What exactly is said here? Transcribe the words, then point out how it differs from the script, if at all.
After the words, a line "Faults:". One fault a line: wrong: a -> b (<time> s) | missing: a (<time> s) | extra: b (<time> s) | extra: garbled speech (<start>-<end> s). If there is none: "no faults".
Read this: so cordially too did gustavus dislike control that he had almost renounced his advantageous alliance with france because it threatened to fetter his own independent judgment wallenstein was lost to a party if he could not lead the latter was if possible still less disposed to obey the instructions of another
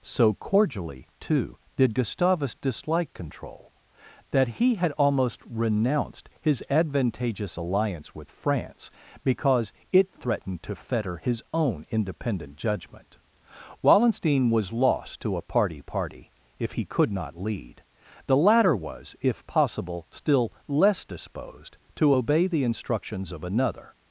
so cordially too did gustavus dislike control that he had almost renounced his advantageous alliance with france because it threatened to fetter his own independent judgment wallenstein was lost to a party party if he could not lead the latter was if possible still less disposed to obey the instructions of another
Faults:
extra: party (15.8 s)